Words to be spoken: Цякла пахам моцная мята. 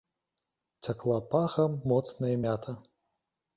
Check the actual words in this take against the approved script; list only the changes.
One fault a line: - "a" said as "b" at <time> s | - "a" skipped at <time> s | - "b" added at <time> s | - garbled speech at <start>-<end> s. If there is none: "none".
none